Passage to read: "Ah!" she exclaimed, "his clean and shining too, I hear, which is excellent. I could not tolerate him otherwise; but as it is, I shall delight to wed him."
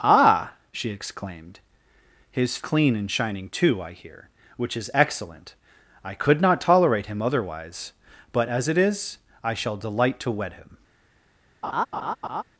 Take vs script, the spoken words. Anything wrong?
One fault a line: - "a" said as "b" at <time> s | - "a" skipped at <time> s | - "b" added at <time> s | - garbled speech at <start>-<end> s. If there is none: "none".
none